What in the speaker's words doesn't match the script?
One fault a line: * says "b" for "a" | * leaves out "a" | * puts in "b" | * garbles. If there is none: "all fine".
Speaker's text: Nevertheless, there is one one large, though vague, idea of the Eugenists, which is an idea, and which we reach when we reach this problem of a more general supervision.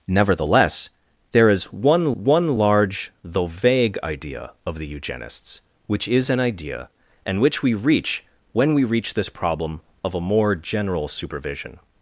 all fine